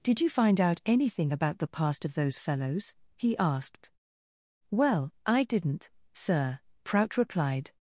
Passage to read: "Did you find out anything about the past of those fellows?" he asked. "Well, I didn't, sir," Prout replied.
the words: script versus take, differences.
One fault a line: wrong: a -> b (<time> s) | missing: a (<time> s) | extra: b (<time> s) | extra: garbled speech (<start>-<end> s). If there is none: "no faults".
no faults